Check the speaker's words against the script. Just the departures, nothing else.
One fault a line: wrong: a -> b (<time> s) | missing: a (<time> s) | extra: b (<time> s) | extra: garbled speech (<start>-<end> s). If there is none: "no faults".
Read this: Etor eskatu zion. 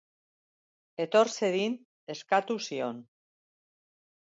extra: zedin (1.3 s)